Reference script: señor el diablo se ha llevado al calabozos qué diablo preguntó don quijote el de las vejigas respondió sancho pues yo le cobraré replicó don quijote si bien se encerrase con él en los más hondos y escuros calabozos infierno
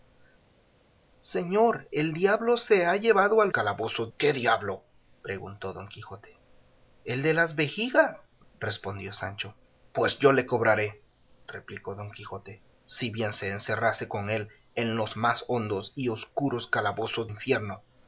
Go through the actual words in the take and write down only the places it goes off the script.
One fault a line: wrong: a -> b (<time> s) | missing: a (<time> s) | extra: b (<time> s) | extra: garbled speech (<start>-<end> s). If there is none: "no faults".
no faults